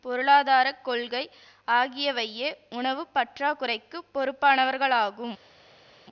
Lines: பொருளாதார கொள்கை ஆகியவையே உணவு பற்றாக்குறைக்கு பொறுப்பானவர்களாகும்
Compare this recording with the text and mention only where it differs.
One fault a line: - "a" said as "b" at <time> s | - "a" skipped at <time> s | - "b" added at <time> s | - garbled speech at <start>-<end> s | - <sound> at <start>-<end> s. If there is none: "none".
none